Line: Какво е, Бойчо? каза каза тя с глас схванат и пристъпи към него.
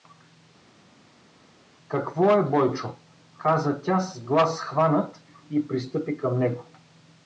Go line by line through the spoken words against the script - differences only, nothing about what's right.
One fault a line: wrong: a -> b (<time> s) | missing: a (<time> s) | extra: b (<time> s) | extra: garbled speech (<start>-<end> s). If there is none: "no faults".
missing: каза (3.8 s)